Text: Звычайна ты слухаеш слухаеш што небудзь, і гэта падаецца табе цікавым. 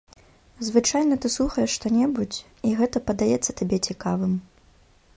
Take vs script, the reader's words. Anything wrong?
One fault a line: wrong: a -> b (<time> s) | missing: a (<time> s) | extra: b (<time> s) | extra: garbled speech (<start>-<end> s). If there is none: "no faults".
missing: слухаеш (1.8 s)